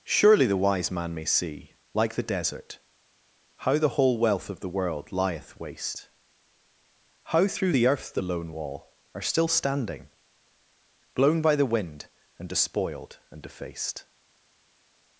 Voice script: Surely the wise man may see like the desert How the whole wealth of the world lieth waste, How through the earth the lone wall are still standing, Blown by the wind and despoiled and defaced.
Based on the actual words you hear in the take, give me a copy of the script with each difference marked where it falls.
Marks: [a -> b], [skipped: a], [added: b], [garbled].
Surely the wise man may see like the desert How the whole wealth of the world lieth waste, How through the earth the lone wall are still standing, Blown by the wind and despoiled and defaced.